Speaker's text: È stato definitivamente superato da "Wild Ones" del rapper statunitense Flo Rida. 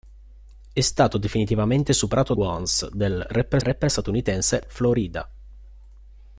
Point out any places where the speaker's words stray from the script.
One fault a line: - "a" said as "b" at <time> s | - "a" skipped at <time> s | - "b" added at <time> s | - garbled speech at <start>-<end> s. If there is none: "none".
- "da Wild" skipped at 2.3 s
- "rapper" added at 3.6 s